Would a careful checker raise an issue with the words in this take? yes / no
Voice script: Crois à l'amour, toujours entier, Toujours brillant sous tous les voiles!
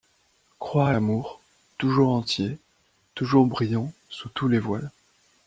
no